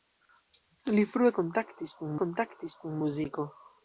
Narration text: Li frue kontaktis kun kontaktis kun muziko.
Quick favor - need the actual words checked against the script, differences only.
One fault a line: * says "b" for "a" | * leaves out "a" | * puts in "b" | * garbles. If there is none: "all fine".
all fine